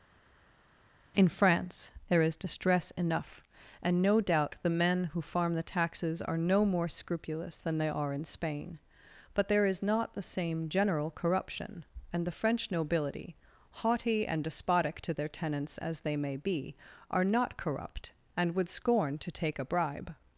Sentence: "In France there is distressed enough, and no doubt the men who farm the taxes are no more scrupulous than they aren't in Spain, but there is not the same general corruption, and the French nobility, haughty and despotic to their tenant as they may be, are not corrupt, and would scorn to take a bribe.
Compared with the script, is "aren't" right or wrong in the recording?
wrong